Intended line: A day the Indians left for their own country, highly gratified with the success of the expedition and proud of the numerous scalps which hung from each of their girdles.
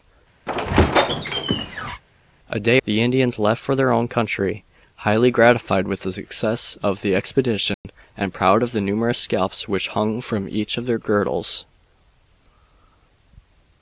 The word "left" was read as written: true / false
true